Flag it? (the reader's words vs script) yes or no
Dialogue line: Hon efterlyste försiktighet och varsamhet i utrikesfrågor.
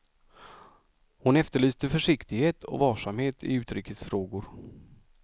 no